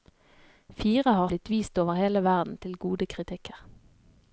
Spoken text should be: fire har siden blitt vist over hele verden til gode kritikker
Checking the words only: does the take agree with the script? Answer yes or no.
no